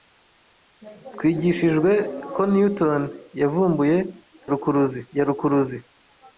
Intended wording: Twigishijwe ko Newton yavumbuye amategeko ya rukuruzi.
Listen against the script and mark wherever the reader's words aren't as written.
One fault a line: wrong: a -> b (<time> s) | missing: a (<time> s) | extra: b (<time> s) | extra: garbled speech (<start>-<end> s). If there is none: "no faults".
wrong: amategeko -> rukuruzi (4.5 s)